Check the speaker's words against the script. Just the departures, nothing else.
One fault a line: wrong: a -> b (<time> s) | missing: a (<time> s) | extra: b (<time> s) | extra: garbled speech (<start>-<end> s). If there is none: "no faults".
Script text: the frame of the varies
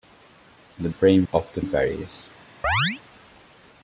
no faults